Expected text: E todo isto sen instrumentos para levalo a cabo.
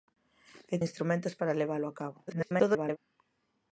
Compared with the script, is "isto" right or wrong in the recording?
wrong